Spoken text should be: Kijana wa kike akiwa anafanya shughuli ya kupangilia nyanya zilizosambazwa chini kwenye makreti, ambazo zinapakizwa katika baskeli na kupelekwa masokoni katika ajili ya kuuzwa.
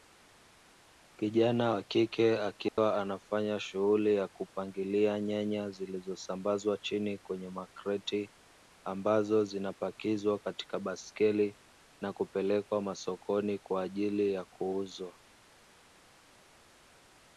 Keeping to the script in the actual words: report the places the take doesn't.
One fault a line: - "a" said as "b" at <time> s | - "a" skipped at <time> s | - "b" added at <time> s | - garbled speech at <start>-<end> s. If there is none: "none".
- "katika" said as "kwa" at 13.6 s